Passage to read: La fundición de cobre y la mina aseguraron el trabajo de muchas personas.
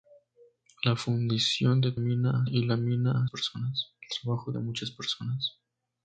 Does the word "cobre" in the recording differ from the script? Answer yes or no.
yes